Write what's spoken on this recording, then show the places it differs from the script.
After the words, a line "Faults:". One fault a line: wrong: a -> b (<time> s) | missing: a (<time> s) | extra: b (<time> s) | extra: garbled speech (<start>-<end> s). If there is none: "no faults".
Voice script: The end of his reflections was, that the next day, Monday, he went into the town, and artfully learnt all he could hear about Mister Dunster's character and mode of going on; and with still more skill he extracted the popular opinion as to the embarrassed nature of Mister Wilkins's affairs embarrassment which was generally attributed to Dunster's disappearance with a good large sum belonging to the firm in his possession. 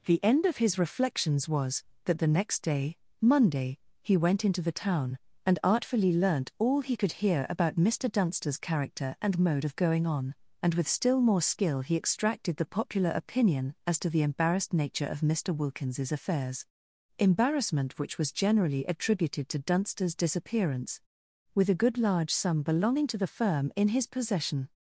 The end of his reflections was, that the next day, Monday, he went into the town, and artfully learnt all he could hear about Mister Dunster's character and mode of going on; and with still more skill he extracted the popular opinion as to the embarrassed nature of Mister Wilkins's affairs embarrassment which was generally attributed to Dunster's disappearance with a good large sum belonging to the firm in his possession.
Faults:
no faults